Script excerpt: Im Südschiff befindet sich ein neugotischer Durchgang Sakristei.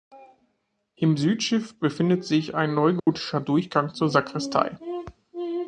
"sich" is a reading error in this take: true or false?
false